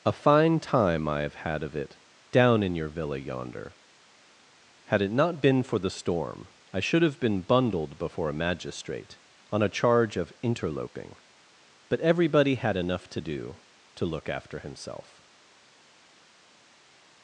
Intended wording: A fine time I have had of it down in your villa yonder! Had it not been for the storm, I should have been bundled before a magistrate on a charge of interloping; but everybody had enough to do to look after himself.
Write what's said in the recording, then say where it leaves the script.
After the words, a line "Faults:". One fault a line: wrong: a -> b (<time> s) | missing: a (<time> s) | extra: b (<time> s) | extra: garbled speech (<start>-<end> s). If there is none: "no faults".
A fine time I have had of it down in your villa yonder! Had it not been for the storm, I should have been bundled before a magistrate on a charge of interloping; but everybody had enough to do to look after himself.
Faults:
no faults